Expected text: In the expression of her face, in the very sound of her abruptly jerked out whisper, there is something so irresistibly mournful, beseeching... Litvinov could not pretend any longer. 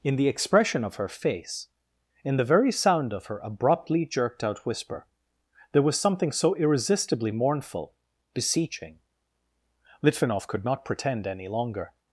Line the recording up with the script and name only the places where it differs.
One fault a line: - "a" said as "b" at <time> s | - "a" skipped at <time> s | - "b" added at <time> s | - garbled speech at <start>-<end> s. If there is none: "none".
- "is" said as "was" at 5.8 s